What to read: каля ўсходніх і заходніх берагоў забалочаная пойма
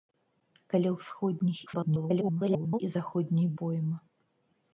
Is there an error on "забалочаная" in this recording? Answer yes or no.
yes